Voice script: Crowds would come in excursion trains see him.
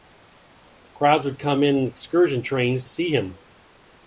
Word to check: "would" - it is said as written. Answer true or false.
true